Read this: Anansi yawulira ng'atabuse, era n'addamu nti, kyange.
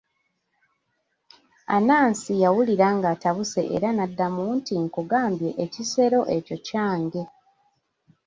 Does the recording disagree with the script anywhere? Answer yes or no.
yes